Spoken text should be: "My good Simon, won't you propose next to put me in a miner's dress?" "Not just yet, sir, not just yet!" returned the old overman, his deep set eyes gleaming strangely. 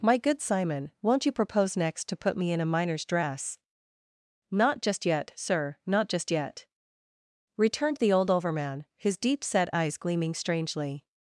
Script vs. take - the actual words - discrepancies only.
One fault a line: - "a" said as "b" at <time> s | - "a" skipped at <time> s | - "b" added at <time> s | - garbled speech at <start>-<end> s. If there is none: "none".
none